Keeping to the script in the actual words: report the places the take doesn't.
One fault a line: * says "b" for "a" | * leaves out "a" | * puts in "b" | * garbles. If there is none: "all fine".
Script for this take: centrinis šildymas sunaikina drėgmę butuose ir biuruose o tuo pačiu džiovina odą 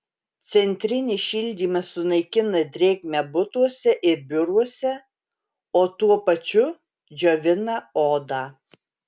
all fine